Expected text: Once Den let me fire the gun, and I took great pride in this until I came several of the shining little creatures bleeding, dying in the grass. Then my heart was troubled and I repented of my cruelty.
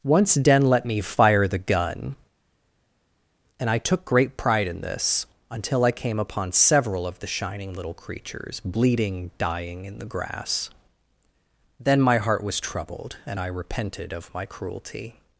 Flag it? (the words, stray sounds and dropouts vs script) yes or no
yes